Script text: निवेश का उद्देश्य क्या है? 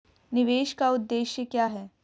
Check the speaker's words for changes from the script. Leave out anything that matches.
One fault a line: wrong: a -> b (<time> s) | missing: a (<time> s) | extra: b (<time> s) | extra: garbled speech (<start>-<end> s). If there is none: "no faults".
no faults